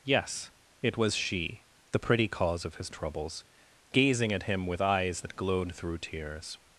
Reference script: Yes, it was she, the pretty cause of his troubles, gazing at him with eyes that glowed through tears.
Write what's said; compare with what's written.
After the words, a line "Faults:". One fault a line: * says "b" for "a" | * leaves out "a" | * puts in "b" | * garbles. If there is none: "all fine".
Yes, it was she, the pretty cause of his troubles, gazing at him with eyes that glowed through tears.
Faults:
all fine